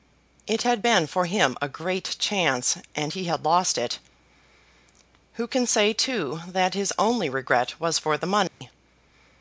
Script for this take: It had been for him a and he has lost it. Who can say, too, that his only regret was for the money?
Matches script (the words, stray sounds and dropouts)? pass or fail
fail